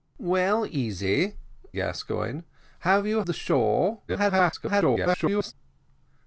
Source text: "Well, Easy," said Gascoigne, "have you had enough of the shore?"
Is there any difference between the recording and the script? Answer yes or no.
yes